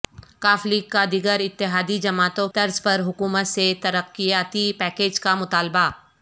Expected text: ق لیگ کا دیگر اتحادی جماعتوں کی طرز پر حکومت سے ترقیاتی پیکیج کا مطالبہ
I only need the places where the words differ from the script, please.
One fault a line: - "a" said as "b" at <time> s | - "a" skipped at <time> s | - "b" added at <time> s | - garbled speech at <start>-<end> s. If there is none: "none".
- "کی" skipped at 2.5 s